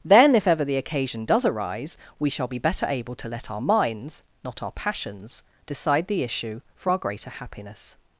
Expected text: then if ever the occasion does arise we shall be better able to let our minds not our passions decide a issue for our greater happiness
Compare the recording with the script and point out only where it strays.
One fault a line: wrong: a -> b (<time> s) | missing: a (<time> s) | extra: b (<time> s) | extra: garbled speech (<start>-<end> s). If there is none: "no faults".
wrong: a -> the (6.1 s)